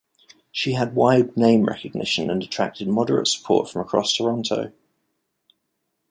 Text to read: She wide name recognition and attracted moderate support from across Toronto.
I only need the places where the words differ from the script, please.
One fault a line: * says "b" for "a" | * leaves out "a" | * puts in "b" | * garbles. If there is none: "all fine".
* puts in "had"